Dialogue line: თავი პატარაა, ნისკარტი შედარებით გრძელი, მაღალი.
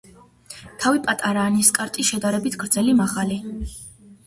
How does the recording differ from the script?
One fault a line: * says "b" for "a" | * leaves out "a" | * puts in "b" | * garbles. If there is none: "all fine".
all fine